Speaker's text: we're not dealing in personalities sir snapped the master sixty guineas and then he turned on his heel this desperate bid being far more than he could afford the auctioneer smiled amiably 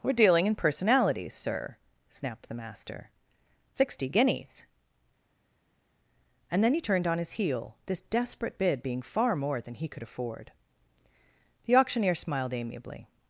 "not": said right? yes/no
no